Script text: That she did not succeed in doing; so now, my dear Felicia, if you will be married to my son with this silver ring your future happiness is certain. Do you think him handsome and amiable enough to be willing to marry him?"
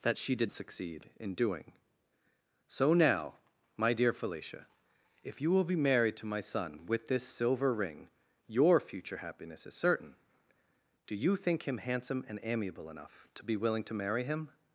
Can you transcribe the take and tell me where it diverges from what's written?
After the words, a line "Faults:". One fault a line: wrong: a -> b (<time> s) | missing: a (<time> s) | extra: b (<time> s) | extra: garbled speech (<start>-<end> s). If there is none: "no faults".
That she did succeed in doing; so now, my dear Felicia, if you will be married to my son with this silver ring your future happiness is certain. Do you think him handsome and amiable enough to be willing to marry him?"
Faults:
missing: not (0.5 s)